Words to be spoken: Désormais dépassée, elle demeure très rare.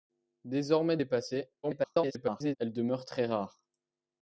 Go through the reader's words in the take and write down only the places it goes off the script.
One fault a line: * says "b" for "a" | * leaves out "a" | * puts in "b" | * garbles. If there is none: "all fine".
* garbles